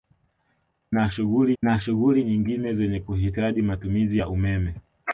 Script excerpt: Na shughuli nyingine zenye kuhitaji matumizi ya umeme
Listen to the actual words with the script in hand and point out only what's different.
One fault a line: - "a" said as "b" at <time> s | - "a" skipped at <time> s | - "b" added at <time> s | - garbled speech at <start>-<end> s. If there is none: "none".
- "na shughuli" added at 1.6 s